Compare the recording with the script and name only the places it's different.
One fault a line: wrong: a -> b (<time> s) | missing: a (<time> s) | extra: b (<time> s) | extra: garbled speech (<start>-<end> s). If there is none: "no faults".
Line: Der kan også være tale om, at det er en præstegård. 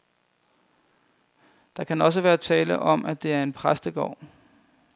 no faults